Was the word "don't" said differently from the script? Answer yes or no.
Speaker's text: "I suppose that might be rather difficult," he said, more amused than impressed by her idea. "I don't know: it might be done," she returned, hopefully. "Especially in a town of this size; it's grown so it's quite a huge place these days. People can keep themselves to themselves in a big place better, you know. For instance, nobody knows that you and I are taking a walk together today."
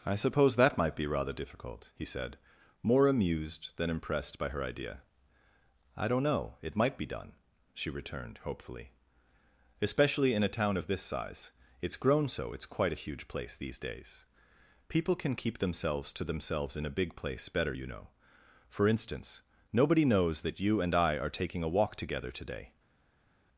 no